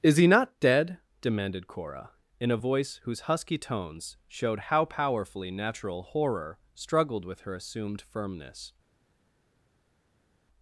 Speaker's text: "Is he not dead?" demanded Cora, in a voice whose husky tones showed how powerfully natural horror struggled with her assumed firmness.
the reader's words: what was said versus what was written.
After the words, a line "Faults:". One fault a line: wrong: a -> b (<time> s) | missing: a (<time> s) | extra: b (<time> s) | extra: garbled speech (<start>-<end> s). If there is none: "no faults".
"Is he not dead?" demanded Cora, in a voice whose husky tones showed how powerfully natural horror struggled with her assumed firmness.
Faults:
no faults